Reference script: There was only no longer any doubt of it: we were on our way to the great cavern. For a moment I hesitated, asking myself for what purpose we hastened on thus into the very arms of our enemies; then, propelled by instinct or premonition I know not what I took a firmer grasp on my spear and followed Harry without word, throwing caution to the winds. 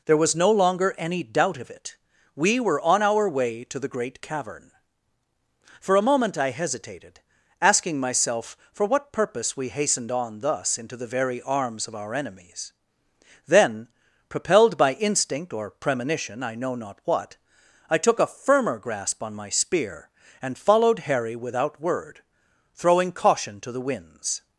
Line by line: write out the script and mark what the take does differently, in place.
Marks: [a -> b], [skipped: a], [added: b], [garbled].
There was [skipped: only] no longer any doubt of it: we were on our way to the great cavern. For a moment I hesitated, asking myself for what purpose we hastened on thus into the very arms of our enemies; then, propelled by instinct or premonition I know not what I took a firmer grasp on my spear and followed Harry without word, throwing caution to the winds.